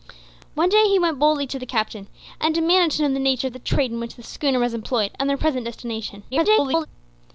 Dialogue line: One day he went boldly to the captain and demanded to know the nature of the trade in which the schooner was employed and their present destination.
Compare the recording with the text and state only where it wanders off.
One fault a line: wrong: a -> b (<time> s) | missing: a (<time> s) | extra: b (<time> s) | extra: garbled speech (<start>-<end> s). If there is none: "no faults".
extra: garbled speech (6.3-6.9 s)